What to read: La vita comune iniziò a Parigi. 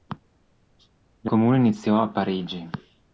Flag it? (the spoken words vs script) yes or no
yes